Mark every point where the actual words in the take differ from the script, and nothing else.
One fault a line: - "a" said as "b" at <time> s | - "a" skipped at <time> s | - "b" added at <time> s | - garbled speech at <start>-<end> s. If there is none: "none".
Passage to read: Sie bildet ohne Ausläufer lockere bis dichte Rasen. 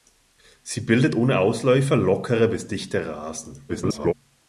- garbled speech at 3.7-4.1 s